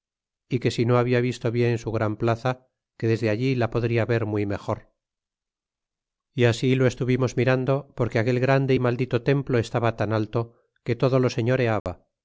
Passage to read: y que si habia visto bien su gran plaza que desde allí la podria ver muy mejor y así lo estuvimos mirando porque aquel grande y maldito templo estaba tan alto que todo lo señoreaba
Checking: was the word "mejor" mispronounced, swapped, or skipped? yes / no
no